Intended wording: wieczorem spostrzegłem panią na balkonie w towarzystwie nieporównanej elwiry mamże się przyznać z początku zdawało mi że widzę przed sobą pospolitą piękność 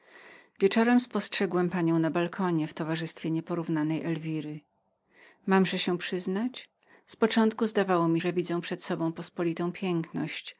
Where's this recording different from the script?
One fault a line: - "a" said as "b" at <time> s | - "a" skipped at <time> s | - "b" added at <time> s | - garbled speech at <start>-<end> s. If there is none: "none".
none